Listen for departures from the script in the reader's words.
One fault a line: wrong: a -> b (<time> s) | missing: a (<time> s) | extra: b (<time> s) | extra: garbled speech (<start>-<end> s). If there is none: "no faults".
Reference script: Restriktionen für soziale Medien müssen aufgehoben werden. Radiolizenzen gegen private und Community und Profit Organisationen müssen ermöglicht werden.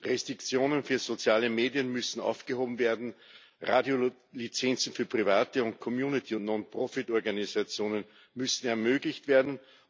wrong: gegen -> für (4.9 s)
extra: Non (6.4 s)